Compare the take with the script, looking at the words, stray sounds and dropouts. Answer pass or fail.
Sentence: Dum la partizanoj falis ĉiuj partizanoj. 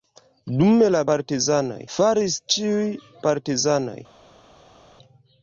pass